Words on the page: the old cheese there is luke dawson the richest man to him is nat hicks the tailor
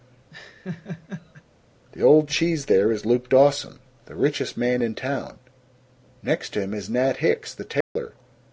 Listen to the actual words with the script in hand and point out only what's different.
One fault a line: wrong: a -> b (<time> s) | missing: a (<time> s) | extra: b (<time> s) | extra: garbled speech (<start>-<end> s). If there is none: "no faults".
extra: in town next (4.8 s)